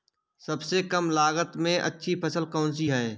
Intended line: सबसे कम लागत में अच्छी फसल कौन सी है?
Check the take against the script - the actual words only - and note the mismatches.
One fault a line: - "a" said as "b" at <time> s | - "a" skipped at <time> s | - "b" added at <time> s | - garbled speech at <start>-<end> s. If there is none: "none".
none